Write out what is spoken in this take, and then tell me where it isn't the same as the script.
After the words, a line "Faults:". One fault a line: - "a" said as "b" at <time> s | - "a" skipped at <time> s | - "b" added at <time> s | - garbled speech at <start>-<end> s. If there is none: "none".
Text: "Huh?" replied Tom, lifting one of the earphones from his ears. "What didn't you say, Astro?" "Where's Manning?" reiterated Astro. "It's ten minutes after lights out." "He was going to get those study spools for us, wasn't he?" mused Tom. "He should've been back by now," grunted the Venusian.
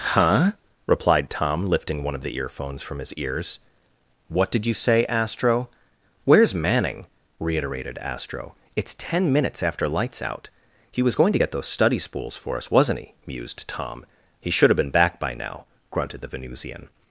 "Huh?" replied Tom, lifting one of the earphones from his ears. "What did you say, Astro?" "Where's Manning?" reiterated Astro. "It's ten minutes after lights out." "He was going to get those study spools for us, wasn't he?" mused Tom. "He should've been back by now," grunted the Venusian.
Faults:
- "didn't" said as "did" at 4.5 s